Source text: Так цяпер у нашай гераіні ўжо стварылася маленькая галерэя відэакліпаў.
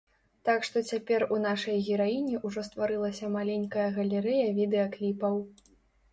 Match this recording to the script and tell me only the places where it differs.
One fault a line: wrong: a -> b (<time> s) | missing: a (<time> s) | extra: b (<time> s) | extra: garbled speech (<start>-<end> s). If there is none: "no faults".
extra: што (0.7 s)